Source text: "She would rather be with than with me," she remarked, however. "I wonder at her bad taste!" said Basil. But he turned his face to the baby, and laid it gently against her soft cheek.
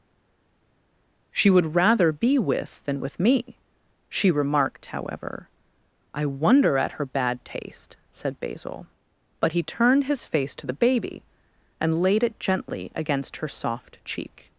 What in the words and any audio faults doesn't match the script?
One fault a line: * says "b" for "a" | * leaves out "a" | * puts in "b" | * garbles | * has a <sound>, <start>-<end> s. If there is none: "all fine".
all fine